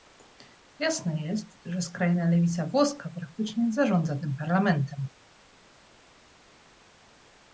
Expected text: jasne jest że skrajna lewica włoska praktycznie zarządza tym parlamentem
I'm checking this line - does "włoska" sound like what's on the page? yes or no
yes